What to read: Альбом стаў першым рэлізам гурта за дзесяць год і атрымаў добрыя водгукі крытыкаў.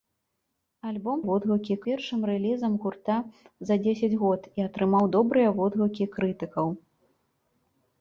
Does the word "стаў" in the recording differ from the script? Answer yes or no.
yes